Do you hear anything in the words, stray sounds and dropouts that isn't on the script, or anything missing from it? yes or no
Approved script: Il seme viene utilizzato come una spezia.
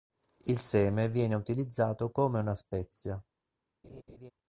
yes